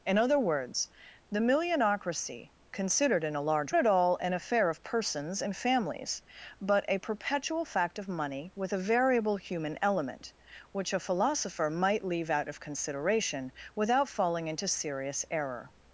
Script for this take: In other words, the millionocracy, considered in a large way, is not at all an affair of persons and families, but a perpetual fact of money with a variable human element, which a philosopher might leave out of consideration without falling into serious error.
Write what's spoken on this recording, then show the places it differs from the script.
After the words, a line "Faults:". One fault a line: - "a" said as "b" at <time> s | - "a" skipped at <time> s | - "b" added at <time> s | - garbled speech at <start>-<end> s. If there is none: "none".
In other words, the millionocracy, considered in a large at all an affair of persons and families, but a perpetual fact of money with a variable human element, which a philosopher might leave out of consideration without falling into serious error.
Faults:
- "way is not" skipped at 3.7 s